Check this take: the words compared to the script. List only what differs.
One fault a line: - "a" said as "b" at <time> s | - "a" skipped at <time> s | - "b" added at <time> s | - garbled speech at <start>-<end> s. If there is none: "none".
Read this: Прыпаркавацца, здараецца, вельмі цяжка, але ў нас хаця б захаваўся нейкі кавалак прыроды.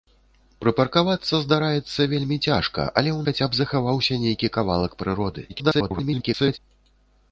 - "нас" skipped at 3.2 s
- garbled speech at 5.5-6.6 s